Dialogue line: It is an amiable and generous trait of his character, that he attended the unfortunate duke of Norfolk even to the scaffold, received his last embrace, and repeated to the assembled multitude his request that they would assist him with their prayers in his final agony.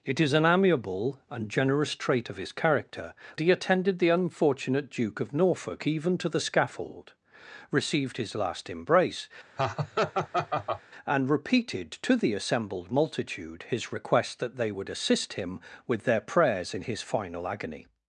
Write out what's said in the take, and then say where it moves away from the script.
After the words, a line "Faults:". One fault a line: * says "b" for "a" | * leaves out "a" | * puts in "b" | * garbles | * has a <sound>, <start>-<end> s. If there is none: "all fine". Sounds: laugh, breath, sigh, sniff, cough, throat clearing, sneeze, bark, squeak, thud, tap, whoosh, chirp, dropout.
It is an amiable and generous trait of his character, he attended the unfortunate duke of Norfolk even to the scaffold, received his last embrace, and repeated to the assembled multitude his request that they would assist him with their prayers in his final agony.
Faults:
* leaves out "that"
* has a laugh, 9.6-10.8 s